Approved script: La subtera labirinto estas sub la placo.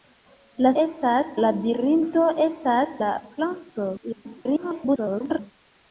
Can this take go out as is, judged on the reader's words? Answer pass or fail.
fail